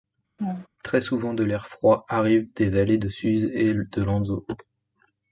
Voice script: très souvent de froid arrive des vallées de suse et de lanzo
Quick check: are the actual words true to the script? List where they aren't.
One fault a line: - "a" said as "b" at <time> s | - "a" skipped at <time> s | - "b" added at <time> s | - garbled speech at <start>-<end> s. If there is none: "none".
- "l'air" added at 1.4 s